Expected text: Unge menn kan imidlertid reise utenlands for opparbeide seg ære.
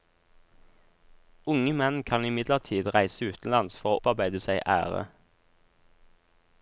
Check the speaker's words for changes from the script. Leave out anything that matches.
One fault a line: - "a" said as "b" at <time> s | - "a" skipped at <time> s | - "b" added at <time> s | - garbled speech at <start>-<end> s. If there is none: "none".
none